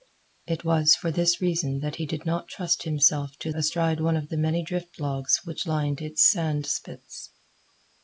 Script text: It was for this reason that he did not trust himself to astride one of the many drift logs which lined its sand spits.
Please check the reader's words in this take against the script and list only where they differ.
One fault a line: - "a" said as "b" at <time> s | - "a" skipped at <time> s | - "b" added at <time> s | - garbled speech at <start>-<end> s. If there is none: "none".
none